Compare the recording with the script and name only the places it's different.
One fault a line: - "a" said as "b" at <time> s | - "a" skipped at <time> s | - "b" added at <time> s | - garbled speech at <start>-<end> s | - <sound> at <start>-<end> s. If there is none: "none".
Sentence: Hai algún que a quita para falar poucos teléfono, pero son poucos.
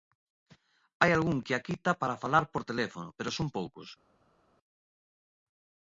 - "poucos" said as "por" at 2.5 s